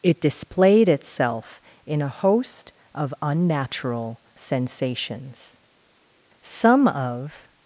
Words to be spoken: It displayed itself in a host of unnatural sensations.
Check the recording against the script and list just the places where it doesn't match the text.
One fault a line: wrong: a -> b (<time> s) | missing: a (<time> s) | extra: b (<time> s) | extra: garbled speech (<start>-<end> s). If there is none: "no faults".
extra: Some of (6.4 s)